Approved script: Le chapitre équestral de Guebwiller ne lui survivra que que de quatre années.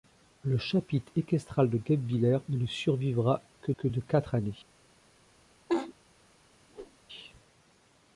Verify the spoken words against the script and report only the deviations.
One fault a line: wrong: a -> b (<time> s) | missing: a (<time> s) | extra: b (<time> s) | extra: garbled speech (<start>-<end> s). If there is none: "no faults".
no faults